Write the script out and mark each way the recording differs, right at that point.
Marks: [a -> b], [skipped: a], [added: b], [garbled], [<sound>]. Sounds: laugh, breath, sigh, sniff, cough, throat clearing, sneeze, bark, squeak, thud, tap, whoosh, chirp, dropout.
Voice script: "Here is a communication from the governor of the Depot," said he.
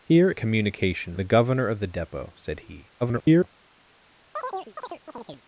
"Here [skipped: is] a communication [skipped: from] the governor of the Depot," said he. [garbled] [chirp]